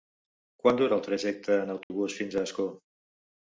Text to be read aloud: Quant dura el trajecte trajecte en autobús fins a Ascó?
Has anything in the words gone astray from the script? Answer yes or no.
yes